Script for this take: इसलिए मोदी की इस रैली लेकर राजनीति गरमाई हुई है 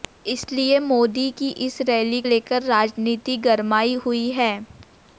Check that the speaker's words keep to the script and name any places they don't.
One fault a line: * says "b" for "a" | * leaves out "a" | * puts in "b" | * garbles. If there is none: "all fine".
all fine